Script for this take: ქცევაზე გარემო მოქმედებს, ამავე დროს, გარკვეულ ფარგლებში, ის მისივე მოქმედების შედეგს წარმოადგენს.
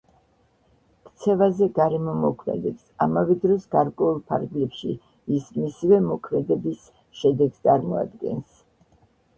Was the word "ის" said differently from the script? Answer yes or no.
no